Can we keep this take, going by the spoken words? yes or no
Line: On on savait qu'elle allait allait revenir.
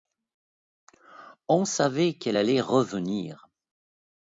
no